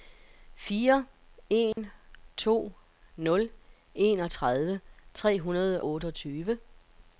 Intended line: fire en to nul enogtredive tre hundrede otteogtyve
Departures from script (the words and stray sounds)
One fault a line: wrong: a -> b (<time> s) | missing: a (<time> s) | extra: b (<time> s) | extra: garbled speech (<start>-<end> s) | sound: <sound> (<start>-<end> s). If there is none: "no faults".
sound: dropout (1.7-1.8 s)